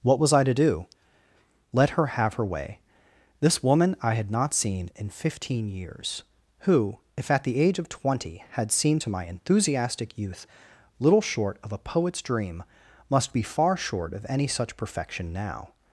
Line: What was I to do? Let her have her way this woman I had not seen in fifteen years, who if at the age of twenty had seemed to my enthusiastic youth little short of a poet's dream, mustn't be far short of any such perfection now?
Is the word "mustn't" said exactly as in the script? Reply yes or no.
no